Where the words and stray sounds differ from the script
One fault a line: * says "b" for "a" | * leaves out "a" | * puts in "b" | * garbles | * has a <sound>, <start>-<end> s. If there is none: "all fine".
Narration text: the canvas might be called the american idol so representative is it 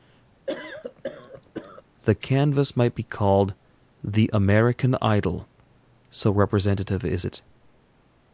* has a cough, 0.5-1.8 s